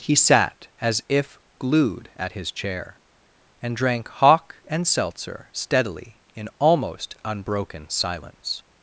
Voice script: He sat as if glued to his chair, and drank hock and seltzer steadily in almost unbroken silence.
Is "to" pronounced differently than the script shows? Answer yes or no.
yes